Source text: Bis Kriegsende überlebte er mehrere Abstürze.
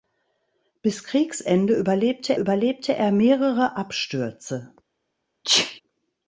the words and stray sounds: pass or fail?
fail